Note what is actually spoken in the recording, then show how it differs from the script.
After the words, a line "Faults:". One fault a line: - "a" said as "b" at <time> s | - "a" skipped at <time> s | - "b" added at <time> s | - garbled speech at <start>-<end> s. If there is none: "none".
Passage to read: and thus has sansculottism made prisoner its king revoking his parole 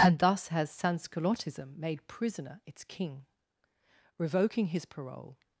and thus has sansculottism made prisoner its king revoking his parole
Faults:
none